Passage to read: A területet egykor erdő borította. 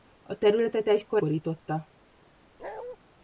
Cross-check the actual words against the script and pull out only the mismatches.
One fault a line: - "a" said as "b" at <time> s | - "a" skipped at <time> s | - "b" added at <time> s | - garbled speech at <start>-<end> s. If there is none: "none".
- "erdő" skipped at 1.2 s